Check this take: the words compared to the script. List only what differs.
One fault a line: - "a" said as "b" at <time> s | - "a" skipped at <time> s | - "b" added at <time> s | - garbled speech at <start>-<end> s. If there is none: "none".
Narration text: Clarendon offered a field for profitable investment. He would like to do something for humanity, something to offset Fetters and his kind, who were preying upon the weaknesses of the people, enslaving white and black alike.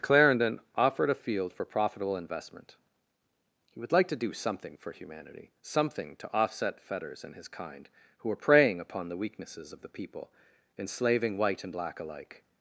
none